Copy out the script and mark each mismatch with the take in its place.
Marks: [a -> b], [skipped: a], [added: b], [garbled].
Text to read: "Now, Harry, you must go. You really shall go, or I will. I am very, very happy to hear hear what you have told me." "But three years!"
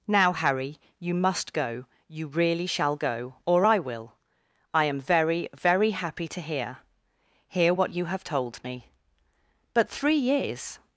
"Now, Harry, you must go. You really shall go, or I will. I am very, very happy to hear hear what you have told me." "But three years!"